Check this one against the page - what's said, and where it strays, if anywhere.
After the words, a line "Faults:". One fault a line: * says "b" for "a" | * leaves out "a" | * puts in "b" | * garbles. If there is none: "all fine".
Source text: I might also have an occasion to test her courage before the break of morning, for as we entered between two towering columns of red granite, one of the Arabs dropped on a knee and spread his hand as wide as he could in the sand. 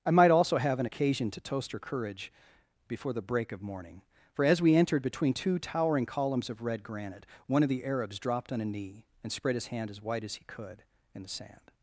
I might also have an occasion to toast her courage before the break of morning, for as we entered between two towering columns of red granite, one of the Arabs dropped on a knee and spread his hand as wide as he could in the sand.
Faults:
* says "toast" for "test"